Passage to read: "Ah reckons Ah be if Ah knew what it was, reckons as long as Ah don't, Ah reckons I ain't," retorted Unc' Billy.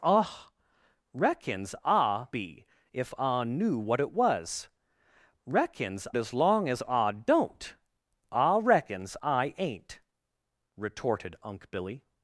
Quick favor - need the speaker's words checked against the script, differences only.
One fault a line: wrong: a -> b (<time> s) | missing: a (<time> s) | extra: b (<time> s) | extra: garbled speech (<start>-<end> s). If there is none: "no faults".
no faults